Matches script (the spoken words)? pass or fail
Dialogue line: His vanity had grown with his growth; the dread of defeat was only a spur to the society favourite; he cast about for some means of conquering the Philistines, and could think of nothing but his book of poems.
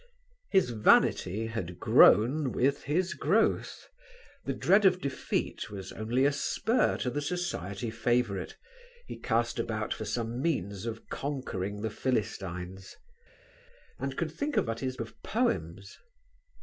fail